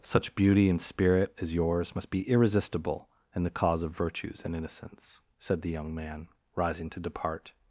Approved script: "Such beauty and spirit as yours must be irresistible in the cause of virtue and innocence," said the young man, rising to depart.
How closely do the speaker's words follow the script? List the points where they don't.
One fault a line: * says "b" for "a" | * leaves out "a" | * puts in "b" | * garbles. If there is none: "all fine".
* says "virtues" for "virtue"